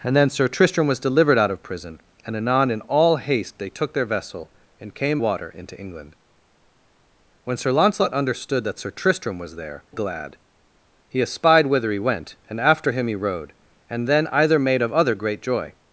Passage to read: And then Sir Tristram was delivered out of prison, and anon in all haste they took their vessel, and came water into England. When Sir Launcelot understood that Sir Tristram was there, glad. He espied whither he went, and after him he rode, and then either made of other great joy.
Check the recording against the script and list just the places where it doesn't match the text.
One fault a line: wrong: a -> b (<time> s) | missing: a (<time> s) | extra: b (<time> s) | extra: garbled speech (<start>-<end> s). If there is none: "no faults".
no faults